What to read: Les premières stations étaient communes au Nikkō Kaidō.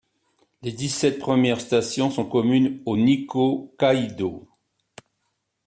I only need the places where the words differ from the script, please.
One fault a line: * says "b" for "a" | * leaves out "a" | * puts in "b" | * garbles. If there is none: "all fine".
* puts in "dix sept"
* says "sont" for "étaient"